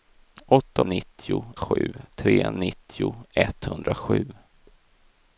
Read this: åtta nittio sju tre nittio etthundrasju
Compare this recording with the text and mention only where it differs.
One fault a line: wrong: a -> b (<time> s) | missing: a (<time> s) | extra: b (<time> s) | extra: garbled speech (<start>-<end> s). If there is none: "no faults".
no faults